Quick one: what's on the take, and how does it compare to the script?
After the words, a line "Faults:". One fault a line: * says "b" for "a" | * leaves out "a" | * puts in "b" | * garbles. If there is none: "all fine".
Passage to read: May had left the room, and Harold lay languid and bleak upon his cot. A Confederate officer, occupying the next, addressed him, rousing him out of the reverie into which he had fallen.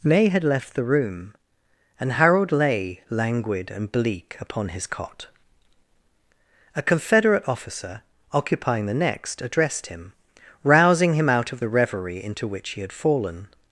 May had left the room, and Harold lay languid and bleak upon his cot. A Confederate officer, occupying the next, addressed him, rousing him out of the reverie into which he had fallen.
Faults:
all fine